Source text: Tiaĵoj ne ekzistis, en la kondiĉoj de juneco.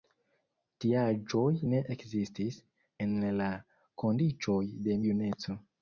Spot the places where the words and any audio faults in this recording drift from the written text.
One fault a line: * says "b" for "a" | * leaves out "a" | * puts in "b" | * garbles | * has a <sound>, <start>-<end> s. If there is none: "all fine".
all fine